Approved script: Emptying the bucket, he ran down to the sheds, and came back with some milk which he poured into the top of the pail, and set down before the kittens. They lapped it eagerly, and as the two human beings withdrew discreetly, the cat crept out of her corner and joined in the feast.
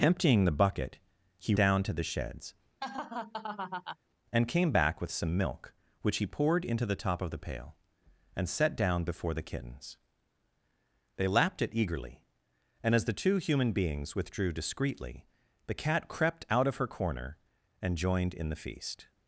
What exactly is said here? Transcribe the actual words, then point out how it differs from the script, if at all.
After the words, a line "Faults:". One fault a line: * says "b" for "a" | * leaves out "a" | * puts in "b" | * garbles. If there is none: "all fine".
Emptying the bucket, he down to the sheds, and came back with some milk which he poured into the top of the pail, and set down before the kittens. They lapped it eagerly, and as the two human beings withdrew discreetly, the cat crept out of her corner and joined in the feast.
Faults:
* leaves out "ran"